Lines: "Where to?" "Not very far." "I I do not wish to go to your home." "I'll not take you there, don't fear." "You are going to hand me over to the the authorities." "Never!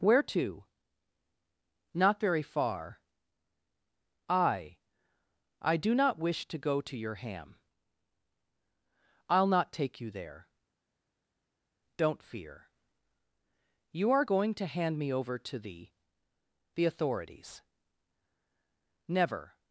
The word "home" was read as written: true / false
false